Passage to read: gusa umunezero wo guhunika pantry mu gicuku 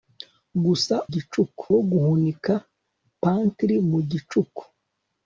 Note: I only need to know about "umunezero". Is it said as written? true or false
false